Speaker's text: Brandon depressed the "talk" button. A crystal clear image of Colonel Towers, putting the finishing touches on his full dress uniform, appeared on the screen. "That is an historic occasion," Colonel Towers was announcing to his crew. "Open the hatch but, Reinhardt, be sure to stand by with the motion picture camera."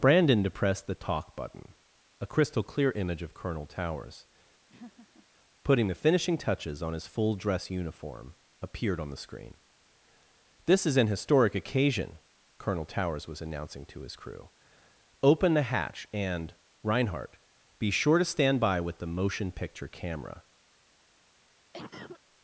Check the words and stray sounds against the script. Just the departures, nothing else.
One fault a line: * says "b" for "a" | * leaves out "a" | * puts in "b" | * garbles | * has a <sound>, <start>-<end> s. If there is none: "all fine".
* has a laugh, 4.7-5.3 s
* says "This" for "That"
* says "and" for "but"
* has a cough, 21.7-22.2 s